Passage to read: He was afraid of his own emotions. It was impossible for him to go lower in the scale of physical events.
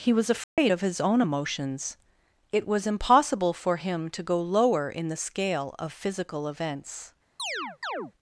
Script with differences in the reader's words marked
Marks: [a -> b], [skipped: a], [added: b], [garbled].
He was afraid of his own emotions. It was impossible for him to go lower in the scale of physical events.